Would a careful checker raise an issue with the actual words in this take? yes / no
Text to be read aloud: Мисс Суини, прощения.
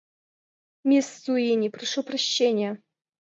yes